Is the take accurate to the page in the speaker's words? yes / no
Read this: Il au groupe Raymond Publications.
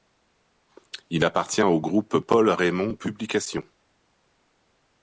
no